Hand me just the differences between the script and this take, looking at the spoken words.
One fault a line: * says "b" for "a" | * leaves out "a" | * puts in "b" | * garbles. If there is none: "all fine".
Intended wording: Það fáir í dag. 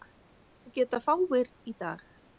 * puts in "geta"